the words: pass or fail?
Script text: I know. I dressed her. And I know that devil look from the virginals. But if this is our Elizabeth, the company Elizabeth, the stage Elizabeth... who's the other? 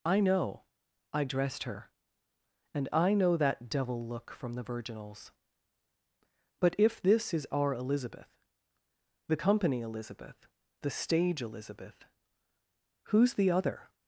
pass